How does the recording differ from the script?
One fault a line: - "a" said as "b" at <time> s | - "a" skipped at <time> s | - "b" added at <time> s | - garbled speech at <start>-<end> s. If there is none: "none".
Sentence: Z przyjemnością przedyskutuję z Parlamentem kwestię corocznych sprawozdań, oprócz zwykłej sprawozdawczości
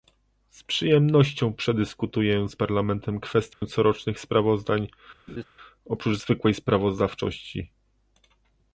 none